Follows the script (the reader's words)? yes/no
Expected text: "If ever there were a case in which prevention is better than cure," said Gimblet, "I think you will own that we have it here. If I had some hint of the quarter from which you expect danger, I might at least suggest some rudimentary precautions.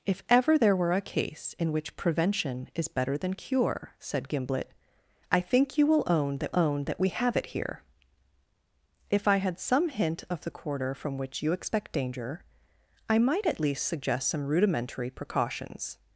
no